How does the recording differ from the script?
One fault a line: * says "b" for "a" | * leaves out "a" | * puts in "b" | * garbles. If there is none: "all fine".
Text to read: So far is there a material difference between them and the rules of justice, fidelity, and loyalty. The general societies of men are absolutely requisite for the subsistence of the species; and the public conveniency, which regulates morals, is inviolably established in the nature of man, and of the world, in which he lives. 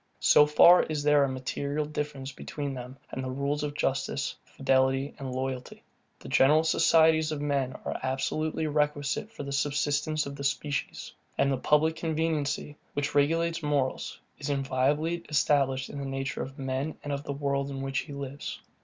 all fine